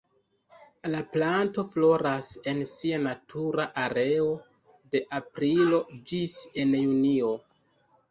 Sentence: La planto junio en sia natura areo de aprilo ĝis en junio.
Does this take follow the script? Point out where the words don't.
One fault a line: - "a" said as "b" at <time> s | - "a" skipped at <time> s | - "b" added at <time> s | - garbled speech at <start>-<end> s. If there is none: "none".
- "junio" said as "floras" at 1.7 s